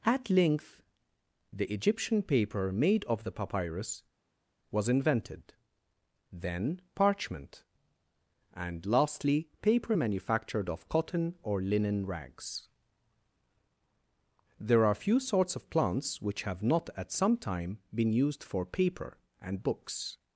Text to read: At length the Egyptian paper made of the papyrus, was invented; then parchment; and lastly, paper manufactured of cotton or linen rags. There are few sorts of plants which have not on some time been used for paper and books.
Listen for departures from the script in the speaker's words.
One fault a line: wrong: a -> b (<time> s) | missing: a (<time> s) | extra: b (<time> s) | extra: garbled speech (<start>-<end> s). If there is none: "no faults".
wrong: on -> at (17.0 s)